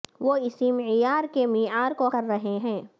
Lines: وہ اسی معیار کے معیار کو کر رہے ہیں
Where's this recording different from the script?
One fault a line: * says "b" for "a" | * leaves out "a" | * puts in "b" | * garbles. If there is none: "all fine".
all fine